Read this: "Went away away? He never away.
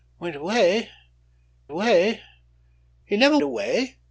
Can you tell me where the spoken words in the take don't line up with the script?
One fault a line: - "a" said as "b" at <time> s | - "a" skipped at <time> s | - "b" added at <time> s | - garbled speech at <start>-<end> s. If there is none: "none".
none